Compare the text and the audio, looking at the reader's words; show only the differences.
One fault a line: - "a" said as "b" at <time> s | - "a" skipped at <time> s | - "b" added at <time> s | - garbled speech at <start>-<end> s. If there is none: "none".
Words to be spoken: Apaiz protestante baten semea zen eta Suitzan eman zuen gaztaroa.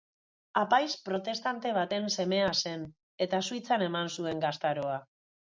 none